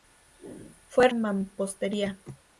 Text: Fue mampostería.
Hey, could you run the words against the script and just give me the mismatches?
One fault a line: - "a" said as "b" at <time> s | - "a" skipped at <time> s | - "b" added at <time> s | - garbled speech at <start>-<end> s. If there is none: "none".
none